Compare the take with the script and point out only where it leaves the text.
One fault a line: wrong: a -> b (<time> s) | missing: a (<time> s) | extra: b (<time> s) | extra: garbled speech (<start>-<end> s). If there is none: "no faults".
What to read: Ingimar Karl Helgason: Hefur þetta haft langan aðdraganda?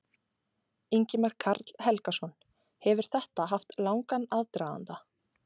no faults